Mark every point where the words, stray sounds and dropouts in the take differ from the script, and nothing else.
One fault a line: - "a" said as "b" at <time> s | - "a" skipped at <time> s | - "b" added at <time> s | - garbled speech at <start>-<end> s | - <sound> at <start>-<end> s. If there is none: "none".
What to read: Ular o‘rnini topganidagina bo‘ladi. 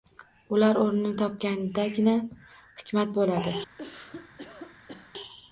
- "hikmat" added at 2.8 s
- cough at 3.8-5.1 s